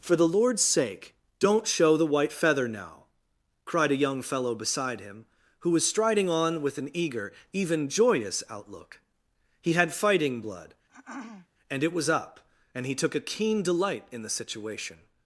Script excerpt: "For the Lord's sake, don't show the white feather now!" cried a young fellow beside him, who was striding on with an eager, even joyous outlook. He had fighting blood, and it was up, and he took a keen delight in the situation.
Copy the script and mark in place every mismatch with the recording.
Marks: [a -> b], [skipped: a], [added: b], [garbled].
"For the Lord's sake, don't show the white feather now!" cried a young fellow beside him, who was striding on with an eager, even joyous outlook. He had fighting blood, and it was up, and he took a keen delight in the situation.